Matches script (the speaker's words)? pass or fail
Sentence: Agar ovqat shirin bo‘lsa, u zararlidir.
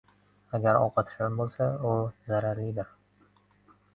pass